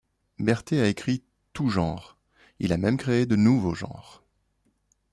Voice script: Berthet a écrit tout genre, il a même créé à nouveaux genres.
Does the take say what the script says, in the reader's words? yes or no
no